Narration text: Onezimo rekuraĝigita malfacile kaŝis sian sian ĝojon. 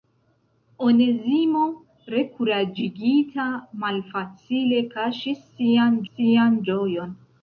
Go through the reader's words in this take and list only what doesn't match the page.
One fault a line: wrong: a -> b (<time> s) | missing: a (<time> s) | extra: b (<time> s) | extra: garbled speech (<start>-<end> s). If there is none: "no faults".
no faults